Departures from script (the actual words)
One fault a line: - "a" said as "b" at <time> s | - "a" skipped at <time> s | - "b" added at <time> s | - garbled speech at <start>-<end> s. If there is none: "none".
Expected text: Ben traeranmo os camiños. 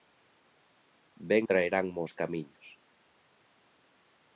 none